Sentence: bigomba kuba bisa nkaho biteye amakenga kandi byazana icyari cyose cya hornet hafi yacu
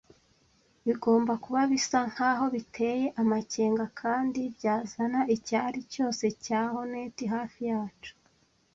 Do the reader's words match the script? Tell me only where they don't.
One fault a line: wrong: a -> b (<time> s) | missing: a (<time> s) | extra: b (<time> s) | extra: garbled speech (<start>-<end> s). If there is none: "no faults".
no faults